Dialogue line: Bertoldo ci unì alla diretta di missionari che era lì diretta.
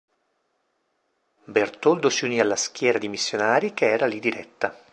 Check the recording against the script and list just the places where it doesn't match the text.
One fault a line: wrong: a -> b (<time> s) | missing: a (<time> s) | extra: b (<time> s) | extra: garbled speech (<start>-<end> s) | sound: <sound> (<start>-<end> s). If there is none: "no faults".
wrong: ci -> si (2.1 s)
wrong: diretta -> schiera (2.6 s)